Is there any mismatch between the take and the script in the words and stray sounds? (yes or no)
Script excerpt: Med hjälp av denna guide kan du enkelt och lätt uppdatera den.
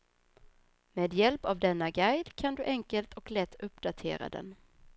no